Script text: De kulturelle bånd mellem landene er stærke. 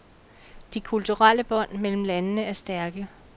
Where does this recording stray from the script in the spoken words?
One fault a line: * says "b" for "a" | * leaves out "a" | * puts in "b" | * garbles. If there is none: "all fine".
all fine